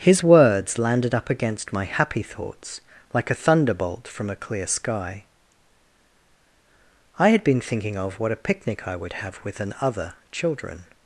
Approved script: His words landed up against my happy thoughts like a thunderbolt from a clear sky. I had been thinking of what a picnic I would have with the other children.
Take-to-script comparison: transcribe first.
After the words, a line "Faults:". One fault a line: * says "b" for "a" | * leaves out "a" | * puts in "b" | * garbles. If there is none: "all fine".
His words landed up against my happy thoughts like a thunderbolt from a clear sky. I had been thinking of what a picnic I would have with an other children.
Faults:
* says "an" for "the"